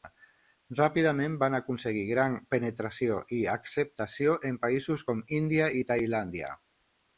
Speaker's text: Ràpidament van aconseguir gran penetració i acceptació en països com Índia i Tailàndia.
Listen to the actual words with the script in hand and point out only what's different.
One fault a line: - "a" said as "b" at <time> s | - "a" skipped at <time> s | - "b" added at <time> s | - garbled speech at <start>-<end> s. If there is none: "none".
none